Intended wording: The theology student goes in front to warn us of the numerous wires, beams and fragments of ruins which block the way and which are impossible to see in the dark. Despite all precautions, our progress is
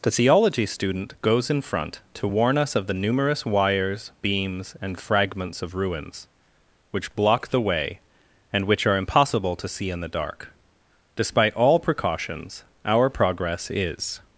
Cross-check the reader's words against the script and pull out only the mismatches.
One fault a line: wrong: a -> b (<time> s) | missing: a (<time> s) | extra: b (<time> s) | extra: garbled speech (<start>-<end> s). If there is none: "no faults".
no faults